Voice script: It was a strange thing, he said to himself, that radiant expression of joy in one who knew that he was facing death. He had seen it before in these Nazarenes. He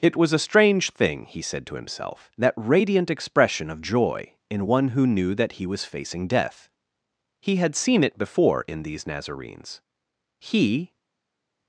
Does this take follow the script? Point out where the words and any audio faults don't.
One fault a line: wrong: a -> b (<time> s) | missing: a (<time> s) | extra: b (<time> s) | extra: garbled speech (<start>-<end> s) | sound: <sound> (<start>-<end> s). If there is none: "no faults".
no faults